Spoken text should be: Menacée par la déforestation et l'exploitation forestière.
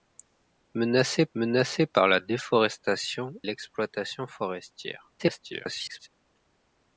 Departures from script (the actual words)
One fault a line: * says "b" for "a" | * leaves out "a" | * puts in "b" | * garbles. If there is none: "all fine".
* puts in "menacée"
* leaves out "et"
* garbles